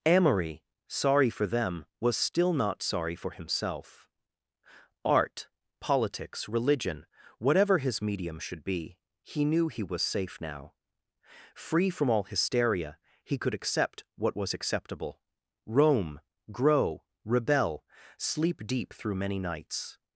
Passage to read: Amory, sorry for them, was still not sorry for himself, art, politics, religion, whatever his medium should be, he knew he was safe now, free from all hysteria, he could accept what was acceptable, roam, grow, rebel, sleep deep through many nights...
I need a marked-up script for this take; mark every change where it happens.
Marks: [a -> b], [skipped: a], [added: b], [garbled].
Amory, sorry for them, was still not sorry for himself, art, politics, religion, whatever his medium should be, he knew he was safe now, free from all hysteria, he could accept what was acceptable, roam, grow, rebel, sleep deep through many nights...